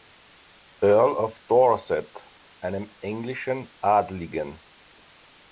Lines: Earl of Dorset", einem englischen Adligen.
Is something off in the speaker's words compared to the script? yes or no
no